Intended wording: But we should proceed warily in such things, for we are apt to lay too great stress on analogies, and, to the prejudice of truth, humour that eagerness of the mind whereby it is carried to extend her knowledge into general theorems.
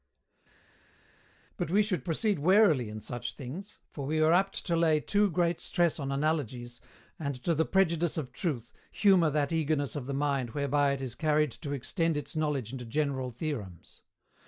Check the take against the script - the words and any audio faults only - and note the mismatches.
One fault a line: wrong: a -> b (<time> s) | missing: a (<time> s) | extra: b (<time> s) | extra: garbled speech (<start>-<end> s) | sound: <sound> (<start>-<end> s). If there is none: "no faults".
wrong: her -> its (12.2 s)